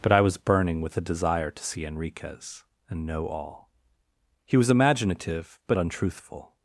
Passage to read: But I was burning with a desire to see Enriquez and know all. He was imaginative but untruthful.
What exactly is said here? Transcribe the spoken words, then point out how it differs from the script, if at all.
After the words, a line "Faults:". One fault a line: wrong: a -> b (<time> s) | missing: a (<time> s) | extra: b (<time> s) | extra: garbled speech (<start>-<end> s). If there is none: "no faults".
But I was burning with a desire to see Enriquez and know all. He was imaginative but untruthful.
Faults:
no faults